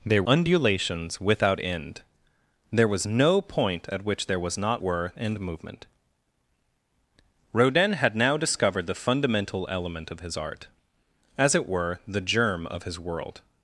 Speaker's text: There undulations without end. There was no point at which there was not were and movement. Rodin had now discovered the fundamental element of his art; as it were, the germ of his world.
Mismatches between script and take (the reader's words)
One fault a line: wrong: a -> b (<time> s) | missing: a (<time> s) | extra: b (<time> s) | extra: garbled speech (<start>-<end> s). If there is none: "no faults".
no faults